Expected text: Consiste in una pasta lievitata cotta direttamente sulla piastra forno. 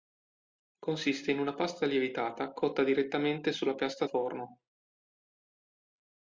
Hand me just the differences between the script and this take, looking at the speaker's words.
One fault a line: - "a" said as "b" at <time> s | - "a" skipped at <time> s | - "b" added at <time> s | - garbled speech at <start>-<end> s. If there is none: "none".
none